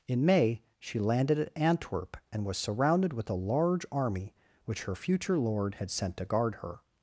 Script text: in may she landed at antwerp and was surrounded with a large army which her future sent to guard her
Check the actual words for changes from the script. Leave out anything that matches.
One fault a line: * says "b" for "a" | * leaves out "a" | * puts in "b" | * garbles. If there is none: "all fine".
* puts in "lord had"